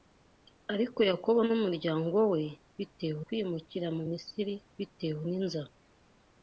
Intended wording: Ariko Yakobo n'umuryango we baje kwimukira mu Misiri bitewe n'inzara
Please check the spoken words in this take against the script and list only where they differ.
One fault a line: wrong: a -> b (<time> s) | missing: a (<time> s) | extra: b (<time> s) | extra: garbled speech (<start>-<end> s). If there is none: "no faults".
wrong: baje -> bitewe (2.8 s)